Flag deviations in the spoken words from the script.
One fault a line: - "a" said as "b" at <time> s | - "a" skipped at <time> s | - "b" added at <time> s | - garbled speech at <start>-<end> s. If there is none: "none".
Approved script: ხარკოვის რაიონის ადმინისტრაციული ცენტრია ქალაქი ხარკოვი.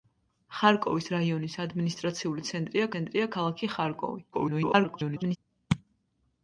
- "ცენტრია" added at 2.9 s
- garbled speech at 4.3-5.4 s